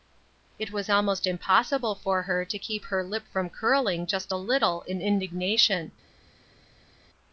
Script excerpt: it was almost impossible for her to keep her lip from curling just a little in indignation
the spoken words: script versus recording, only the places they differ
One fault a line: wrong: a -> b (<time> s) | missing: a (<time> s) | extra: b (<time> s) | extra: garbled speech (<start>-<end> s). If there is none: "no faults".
no faults